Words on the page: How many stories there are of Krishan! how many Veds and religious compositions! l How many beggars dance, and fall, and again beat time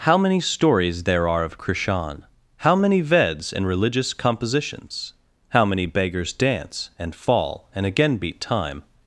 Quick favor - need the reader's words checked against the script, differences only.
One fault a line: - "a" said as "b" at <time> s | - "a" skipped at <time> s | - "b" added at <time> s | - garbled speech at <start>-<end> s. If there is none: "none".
- "l" skipped at 5.1 s